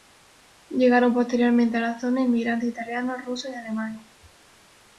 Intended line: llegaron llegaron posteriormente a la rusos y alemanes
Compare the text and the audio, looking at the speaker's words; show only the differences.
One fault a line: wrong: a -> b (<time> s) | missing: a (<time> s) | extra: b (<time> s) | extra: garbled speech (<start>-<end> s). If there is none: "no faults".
missing: llegaron (1.1 s)
extra: zona inmigrantes italianos (2.0 s)